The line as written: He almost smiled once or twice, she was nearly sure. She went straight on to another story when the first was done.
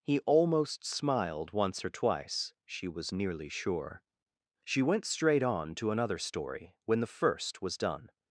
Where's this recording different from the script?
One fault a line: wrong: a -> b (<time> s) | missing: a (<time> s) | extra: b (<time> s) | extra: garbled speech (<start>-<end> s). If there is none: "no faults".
no faults